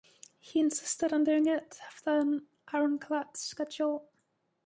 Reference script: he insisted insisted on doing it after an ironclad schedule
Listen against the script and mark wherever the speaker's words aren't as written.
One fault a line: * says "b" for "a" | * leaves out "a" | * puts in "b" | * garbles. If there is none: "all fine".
* leaves out "insisted"